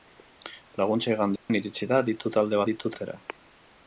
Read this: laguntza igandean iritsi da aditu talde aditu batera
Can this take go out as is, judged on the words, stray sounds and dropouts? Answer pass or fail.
fail